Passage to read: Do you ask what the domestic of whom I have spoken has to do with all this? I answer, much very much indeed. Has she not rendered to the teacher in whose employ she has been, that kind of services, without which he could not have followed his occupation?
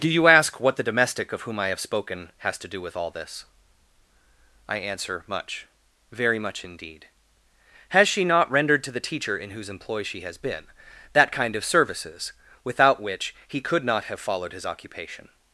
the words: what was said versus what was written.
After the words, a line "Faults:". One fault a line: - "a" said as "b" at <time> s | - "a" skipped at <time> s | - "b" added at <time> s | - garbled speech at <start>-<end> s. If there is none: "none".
Do you ask what the domestic of whom I have spoken has to do with all this? I answer, much very much indeed. Has she not rendered to the teacher in whose employ she has been, that kind of services, without which he could not have followed his occupation?
Faults:
none